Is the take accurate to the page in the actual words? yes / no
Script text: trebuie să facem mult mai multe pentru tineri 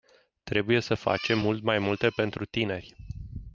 yes